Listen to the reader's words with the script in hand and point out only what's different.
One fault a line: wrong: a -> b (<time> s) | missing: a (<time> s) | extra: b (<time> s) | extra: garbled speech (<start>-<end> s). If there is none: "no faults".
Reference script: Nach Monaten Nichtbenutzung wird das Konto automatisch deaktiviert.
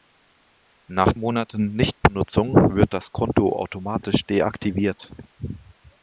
no faults